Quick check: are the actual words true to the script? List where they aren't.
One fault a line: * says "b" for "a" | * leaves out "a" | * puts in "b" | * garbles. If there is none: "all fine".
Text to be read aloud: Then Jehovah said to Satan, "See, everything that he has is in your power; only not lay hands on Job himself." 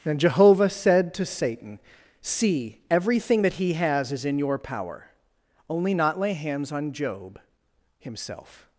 all fine